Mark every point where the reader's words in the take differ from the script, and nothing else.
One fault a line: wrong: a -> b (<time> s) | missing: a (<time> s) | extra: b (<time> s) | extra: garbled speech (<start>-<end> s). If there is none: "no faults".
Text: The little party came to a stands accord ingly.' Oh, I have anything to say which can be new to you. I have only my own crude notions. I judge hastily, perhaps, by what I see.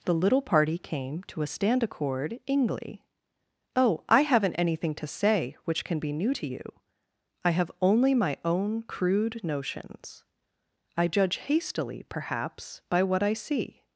wrong: stands -> stand (1.5 s)
wrong: have -> haven't (4.2 s)